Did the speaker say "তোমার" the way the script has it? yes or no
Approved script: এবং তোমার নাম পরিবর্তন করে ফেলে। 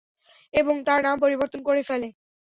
no